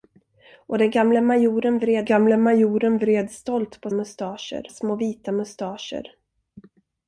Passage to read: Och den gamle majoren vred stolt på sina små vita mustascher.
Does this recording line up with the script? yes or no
no